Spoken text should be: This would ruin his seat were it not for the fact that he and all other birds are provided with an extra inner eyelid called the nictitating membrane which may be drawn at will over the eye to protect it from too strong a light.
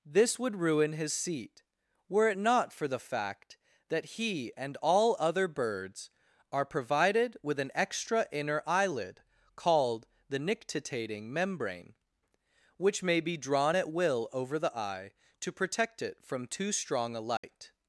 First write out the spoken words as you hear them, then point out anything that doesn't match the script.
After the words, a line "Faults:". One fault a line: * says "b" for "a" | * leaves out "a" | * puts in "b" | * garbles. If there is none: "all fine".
This would ruin his seat were it not for the fact that he and all other birds are provided with an extra inner eyelid called the nictitating membrane which may be drawn at will over the eye to protect it from too strong a light.
Faults:
all fine